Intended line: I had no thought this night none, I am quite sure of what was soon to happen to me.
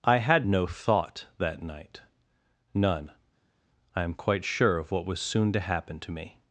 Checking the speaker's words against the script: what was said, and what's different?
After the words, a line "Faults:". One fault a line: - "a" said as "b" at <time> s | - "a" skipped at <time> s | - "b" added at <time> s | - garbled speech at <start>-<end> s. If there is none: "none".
I had no thought that night none, I am quite sure of what was soon to happen to me.
Faults:
- "this" said as "that" at 1.4 s